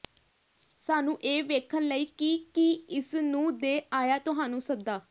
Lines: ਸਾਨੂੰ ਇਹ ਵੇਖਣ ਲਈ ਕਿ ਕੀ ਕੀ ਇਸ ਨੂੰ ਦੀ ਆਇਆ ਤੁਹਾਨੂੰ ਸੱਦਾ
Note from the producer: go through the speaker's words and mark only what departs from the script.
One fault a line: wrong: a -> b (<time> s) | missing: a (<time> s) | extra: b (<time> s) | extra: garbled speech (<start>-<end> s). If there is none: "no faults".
missing: ਕੀ (2.7 s)
wrong: ਦੀ -> ਦੇ (3.6 s)